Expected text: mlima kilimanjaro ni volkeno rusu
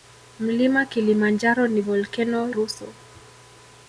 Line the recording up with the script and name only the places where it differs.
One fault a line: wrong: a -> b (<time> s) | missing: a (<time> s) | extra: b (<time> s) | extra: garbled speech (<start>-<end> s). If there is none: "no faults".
no faults